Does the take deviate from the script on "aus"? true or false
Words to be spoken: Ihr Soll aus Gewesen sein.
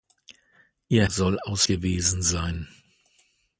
false